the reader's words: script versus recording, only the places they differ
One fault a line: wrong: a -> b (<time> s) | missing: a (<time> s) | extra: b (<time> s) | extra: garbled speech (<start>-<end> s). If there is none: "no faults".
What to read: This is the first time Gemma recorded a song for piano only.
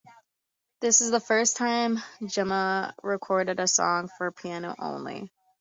no faults